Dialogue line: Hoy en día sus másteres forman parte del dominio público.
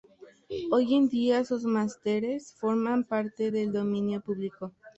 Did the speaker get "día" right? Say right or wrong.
right